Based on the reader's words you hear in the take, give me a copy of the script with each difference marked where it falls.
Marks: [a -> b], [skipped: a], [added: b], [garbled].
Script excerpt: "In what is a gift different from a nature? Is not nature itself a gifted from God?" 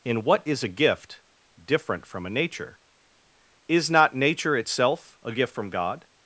"In what is a gift different from a nature? Is not nature itself a [gifted -> gift] from God?"